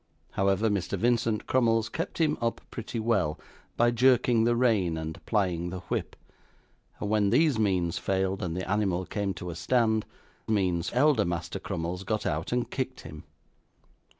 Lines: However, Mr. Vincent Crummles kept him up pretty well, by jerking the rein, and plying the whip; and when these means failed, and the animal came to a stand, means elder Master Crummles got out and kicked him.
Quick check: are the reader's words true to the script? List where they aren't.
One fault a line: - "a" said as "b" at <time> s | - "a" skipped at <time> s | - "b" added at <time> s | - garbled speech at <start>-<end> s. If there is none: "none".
none